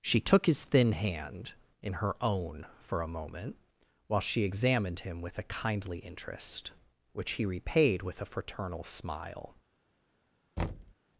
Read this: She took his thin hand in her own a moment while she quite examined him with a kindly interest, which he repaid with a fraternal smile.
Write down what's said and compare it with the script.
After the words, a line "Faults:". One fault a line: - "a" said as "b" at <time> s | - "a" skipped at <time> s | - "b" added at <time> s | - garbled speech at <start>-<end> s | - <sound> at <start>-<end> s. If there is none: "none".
She took his thin hand in her own for a moment while she examined him with a kindly interest, which he repaid with a fraternal smile.
Faults:
- "for" added at 2.8 s
- "quite" skipped at 4.4 s
- thud at 10.6-10.9 s